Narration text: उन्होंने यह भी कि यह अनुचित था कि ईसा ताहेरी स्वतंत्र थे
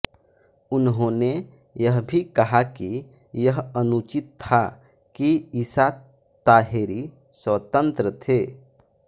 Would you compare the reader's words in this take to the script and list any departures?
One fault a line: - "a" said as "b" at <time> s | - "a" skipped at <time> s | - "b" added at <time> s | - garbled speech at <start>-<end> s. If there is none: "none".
- "कहा" added at 2.4 s